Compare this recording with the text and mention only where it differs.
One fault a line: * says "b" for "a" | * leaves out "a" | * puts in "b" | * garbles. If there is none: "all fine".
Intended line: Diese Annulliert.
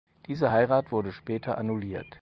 * puts in "Heirat wurde später"